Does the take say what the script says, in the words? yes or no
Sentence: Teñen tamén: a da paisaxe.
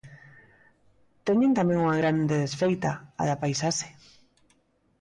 no